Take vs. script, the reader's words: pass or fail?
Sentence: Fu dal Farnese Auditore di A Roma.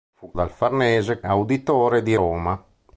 pass